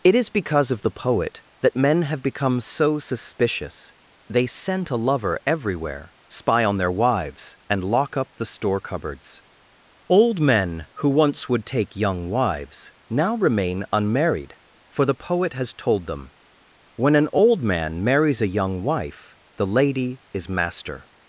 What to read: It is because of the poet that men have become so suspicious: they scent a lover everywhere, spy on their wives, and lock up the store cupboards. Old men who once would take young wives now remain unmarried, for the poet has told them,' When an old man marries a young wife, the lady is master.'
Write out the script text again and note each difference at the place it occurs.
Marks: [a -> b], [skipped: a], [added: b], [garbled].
It is because of the poet that men have become so suspicious: they scent a lover everywhere, spy on their wives, and lock up the store cupboards. Old men who once would take young wives now remain unmarried, for the poet has told them,' When an old man marries a young wife, the lady is master.'